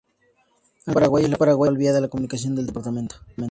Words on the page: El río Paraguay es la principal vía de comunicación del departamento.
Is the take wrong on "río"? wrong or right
wrong